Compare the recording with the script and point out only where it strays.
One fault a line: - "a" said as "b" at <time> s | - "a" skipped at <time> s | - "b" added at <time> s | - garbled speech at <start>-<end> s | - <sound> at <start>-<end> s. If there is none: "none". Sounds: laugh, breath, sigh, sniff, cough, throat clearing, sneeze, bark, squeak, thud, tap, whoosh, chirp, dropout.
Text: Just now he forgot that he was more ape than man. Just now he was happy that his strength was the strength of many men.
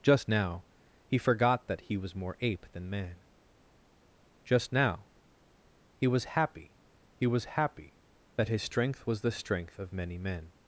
- "he was happy" added at 7.1 s